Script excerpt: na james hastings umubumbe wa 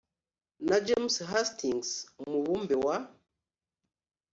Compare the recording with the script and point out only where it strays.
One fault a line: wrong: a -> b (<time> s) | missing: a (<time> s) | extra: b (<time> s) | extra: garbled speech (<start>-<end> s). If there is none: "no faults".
no faults